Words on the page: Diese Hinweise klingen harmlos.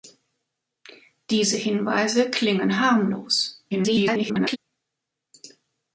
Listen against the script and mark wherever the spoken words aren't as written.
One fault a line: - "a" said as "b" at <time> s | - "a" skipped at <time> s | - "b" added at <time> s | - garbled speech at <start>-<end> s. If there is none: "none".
- garbled speech at 3.7-4.6 s